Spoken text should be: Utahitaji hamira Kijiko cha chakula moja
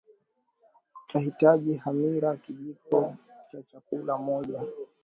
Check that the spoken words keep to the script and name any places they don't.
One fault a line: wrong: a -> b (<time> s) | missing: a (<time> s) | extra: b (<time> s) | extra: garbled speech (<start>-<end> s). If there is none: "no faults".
no faults